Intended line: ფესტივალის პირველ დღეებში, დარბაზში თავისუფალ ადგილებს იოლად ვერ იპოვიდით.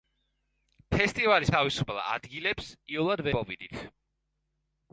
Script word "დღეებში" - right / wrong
wrong